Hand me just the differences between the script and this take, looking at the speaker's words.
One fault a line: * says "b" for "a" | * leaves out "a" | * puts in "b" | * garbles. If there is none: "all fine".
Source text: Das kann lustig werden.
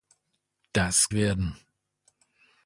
* leaves out "kann lustig"